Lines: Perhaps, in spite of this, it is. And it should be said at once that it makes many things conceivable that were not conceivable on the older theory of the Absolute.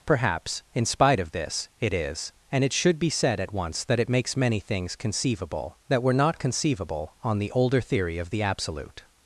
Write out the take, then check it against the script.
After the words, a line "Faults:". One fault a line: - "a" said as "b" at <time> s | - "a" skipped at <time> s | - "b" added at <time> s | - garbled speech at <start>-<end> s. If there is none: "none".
Perhaps, in spite of this, it is. And it should be said at once that it makes many things conceivable that were not conceivable on the older theory of the Absolute.
Faults:
none